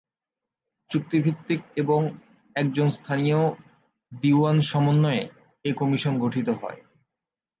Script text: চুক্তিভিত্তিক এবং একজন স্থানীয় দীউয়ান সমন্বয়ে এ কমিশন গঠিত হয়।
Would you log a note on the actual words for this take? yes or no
no